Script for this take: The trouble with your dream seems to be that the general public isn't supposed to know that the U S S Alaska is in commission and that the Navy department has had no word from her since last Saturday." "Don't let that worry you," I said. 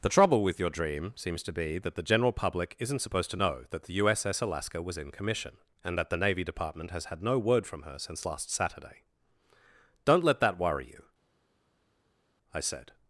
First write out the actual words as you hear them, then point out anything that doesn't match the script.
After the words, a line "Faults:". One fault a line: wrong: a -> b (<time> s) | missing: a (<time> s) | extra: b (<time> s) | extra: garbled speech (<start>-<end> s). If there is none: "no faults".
The trouble with your dream seems to be that the general public isn't supposed to know that the U S S Alaska was in commission and that the Navy department has had no word from her since last Saturday." "Don't let that worry you," I said.
Faults:
wrong: is -> was (4.8 s)